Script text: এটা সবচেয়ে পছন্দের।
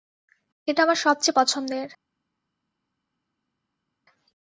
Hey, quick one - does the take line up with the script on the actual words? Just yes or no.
no